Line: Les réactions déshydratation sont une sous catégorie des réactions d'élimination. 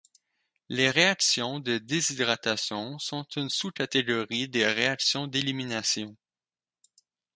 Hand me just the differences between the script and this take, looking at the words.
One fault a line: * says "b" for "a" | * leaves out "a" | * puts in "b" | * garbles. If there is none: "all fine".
* puts in "de"